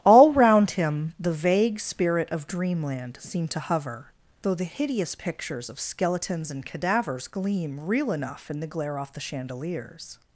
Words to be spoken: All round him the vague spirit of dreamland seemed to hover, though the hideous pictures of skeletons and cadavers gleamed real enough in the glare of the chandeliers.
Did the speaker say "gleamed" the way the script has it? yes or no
no